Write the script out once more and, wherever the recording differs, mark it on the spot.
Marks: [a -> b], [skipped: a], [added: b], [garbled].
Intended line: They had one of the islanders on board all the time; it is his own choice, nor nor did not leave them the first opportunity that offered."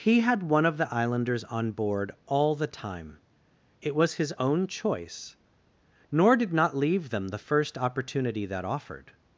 [They -> He] had one of the islanders on board all the time; it [is -> was] his own choice, nor [skipped: nor] did not leave them the first opportunity that offered."